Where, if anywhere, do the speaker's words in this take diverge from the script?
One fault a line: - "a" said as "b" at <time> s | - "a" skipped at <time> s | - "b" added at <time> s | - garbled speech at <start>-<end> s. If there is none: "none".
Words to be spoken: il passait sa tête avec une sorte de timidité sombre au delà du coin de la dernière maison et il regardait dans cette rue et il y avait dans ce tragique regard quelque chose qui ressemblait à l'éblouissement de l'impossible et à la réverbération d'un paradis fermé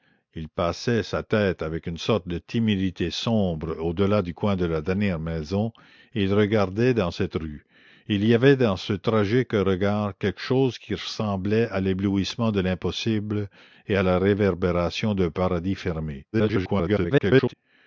- garbled speech at 16.3-17.5 s